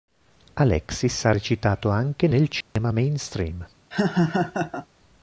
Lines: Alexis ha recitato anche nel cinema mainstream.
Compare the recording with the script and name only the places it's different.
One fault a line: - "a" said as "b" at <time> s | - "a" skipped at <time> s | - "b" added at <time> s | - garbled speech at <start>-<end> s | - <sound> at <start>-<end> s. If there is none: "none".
- dropout at 2.6-2.8 s
- laugh at 3.9-4.9 s